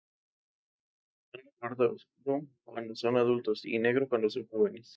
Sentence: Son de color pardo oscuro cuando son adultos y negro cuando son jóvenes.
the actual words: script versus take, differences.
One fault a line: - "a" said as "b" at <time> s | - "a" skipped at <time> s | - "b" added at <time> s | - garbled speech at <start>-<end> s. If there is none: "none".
- "color" skipped at 1.5 s